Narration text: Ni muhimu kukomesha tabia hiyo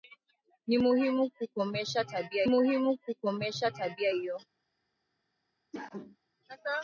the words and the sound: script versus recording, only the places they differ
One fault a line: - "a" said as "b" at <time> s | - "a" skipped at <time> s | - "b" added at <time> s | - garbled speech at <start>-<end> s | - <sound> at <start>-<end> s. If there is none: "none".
- "muhimu kukomesha tabia" added at 2.4 s
- cough at 5.7-6.2 s